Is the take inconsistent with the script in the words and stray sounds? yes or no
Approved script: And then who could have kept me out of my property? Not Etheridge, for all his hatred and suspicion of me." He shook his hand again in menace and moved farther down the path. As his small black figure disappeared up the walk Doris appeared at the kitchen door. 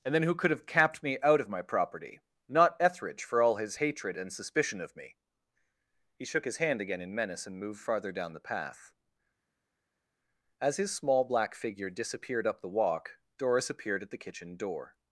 yes